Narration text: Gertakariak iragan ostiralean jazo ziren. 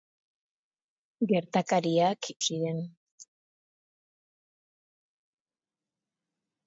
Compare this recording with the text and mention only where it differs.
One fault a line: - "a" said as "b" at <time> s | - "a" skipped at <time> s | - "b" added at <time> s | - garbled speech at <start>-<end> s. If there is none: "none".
- "iragan ostiralean jazo" skipped at 2.3 s